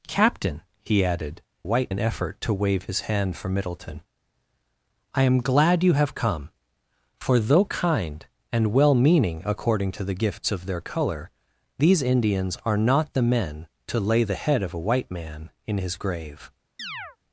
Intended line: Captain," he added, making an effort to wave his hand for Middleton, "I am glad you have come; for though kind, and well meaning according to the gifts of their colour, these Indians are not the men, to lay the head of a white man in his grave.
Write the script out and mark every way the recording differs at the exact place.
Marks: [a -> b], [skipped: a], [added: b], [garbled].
Captain," he added, [making -> white] an effort to wave his hand for Middleton, "I am glad you have come; for though kind, and well meaning according to the gifts of their colour, these Indians are not the men, to lay the head of a white man in his grave.